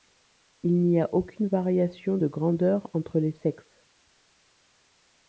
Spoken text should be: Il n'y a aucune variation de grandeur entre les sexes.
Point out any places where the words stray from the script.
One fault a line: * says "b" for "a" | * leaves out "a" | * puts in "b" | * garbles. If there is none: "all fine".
all fine